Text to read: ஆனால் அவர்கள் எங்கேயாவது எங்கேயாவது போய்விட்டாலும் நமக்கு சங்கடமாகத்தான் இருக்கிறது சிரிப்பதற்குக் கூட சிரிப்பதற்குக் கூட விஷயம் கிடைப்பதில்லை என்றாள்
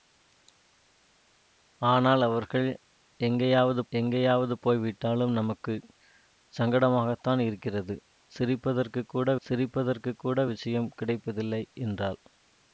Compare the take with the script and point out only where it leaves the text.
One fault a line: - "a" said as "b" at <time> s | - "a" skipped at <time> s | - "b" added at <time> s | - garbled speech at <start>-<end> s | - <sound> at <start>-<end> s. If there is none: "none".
none